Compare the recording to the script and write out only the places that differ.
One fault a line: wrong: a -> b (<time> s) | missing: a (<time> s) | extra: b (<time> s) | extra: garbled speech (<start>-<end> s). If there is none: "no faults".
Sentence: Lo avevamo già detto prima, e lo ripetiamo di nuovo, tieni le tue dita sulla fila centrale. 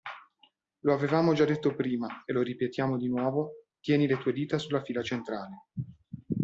no faults